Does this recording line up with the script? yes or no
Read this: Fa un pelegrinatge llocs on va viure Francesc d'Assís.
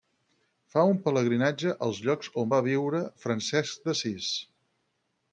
no